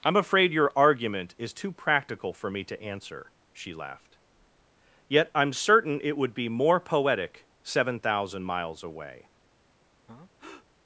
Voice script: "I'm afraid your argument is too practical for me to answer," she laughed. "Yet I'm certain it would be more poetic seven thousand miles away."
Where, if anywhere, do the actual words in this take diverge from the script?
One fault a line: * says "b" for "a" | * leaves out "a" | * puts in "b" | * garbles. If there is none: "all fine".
all fine